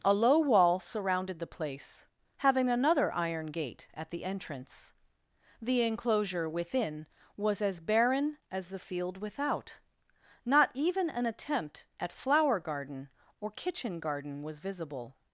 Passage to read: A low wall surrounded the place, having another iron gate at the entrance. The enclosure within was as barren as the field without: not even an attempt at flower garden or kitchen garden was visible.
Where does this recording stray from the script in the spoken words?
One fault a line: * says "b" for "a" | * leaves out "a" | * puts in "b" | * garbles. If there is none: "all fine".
all fine